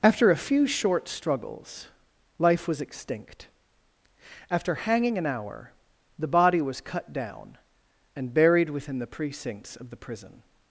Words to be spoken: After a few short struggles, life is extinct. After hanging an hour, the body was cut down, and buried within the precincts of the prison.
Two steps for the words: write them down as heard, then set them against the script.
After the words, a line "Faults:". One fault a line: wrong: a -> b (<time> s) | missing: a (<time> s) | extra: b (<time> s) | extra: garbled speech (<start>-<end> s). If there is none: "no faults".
After a few short struggles, life was extinct. After hanging an hour, the body was cut down, and buried within the precincts of the prison.
Faults:
wrong: is -> was (2.7 s)